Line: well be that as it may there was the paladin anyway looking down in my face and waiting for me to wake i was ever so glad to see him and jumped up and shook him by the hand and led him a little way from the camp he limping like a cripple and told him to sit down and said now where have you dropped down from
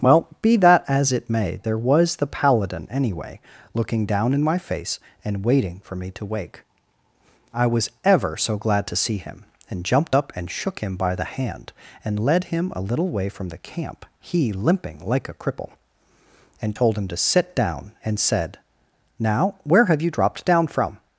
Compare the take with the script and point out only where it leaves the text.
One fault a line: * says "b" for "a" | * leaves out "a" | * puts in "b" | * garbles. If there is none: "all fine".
all fine